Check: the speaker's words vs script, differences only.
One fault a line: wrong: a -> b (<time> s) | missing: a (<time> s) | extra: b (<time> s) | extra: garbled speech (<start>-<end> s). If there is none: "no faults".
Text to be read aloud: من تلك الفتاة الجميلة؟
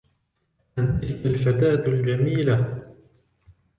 no faults